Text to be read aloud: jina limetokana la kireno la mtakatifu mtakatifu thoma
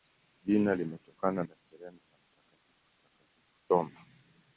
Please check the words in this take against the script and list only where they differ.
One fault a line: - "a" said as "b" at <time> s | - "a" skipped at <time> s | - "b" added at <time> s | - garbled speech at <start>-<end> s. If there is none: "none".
none